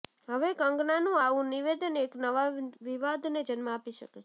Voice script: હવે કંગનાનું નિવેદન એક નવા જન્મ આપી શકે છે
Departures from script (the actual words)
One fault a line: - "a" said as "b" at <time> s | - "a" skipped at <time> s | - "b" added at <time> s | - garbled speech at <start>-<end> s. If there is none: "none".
- "આવું" added at 1.2 s
- "વિવાદને" added at 2.8 s